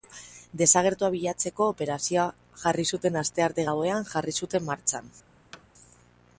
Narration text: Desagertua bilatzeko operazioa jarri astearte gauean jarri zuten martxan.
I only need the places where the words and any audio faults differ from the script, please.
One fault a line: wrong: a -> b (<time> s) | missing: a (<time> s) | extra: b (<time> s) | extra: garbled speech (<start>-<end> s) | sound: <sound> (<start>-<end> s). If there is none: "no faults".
extra: zuten (3.0 s)
sound: thud (5.5-5.7 s)